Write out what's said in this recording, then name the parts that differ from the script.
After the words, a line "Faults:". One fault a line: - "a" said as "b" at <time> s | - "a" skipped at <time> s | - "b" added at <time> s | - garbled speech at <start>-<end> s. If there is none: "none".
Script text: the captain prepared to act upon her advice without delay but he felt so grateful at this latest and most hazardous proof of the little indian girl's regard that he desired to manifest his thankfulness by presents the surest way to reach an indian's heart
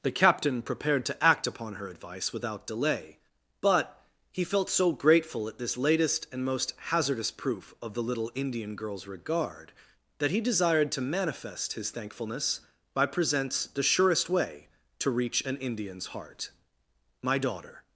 the captain prepared to act upon her advice without delay but he felt so grateful at this latest and most hazardous proof of the little indian girl's regard that he desired to manifest his thankfulness by presents the surest way to reach an indian's heart my daughter
Faults:
- "my daughter" added at 17.2 s